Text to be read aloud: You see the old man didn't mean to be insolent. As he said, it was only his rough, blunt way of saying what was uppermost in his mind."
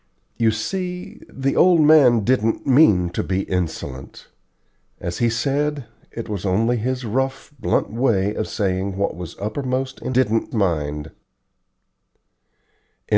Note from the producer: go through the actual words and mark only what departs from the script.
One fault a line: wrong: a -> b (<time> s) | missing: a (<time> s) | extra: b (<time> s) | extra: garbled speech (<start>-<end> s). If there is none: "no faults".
wrong: his -> didn't (10.1 s)